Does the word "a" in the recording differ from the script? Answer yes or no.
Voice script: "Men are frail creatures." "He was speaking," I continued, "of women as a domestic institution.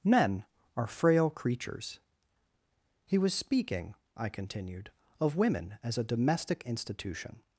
no